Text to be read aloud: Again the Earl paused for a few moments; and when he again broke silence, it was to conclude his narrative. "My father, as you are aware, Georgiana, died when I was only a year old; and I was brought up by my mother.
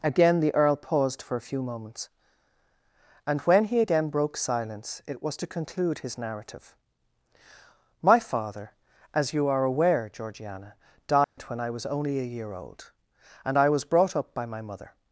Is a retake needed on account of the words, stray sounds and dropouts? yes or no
yes